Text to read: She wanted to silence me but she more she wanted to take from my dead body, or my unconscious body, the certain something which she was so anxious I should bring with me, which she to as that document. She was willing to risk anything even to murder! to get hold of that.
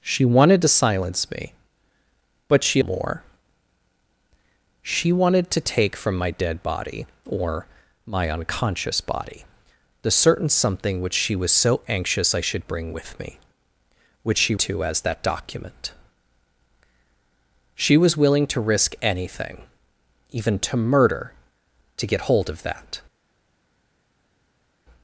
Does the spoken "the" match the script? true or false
true